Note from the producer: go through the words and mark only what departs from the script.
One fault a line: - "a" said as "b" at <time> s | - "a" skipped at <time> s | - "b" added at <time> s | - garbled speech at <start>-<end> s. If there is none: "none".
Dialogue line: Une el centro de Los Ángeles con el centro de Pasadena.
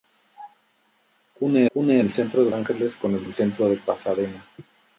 - "une" added at 1.8 s
- "Los" skipped at 2.5 s
- "el" added at 3.2 s